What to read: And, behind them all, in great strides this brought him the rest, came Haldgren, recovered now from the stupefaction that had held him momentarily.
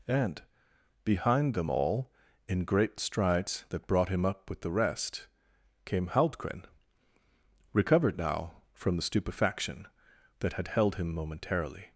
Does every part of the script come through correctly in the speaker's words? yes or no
no